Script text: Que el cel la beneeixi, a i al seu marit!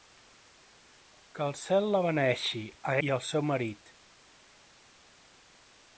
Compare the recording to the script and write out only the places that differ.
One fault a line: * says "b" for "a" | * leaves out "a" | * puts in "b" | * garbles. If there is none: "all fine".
all fine